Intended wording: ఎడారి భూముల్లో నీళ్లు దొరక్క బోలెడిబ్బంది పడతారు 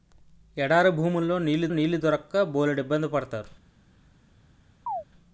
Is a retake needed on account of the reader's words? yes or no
yes